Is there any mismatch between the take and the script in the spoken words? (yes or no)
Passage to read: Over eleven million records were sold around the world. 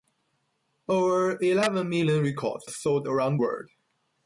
yes